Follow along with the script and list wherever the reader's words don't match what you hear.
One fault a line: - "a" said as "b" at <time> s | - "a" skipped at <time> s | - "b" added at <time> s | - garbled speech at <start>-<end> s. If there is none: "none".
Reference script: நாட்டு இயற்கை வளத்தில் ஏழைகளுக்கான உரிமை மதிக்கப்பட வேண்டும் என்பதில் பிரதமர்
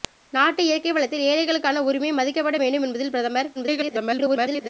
- garbled speech at 3.5-4.7 s